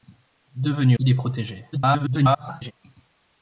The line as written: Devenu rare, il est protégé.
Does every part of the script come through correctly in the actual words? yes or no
no